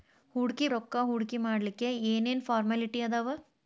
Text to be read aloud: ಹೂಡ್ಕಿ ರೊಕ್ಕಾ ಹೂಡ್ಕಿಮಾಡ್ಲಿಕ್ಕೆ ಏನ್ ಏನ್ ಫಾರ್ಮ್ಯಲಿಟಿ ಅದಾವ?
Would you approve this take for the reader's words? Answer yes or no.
yes